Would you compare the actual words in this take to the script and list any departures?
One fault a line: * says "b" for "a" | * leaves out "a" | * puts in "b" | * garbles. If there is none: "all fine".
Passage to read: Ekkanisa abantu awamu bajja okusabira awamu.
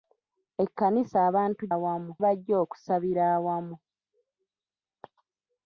all fine